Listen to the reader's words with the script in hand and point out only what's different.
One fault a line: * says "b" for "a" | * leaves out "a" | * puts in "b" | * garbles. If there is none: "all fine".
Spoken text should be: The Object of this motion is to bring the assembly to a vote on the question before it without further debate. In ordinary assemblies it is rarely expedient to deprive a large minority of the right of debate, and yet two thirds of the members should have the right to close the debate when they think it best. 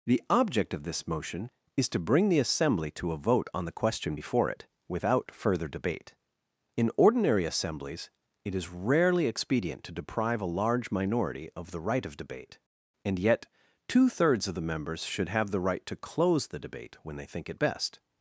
all fine